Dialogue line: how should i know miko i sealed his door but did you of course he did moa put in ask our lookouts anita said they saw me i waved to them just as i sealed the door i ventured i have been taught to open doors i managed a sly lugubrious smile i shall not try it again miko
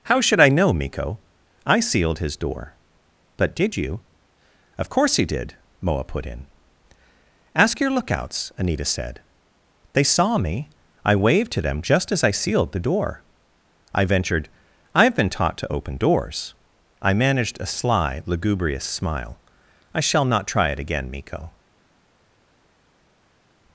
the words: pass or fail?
fail